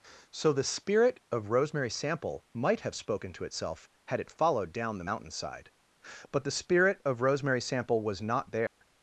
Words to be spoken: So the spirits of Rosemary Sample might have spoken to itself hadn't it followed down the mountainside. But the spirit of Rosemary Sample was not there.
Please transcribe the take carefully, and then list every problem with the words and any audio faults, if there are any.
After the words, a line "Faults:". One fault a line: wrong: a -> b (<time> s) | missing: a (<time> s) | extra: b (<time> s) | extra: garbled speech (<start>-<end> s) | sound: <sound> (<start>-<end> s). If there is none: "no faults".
So the spirit of Rosemary Sample might have spoken to itself had it followed down the mountainside. But the spirit of Rosemary Sample was not there.
Faults:
wrong: spirits -> spirit (0.6 s)
wrong: hadn't -> had (4.1 s)
sound: dropout (8.7-8.8 s)